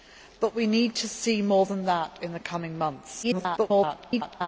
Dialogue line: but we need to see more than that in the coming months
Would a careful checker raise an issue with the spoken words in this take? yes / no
yes